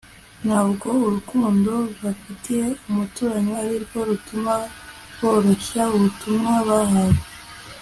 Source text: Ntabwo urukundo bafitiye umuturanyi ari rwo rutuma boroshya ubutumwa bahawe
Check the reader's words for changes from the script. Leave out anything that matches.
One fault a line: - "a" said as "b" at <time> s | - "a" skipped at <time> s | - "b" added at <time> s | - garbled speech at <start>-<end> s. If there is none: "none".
none